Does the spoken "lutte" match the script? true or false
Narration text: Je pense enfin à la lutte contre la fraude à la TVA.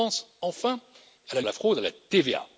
false